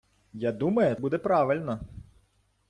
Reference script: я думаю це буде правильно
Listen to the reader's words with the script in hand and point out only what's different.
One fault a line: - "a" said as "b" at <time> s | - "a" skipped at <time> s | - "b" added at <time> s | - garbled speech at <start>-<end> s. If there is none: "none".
- "це" skipped at 0.9 s